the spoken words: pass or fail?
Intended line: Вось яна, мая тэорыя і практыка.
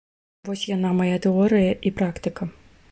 pass